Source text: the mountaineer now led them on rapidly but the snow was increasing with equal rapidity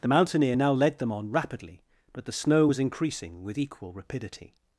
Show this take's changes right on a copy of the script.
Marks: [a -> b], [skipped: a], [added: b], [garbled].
the mountaineer now led them on rapidly but the snow was increasing with equal rapidity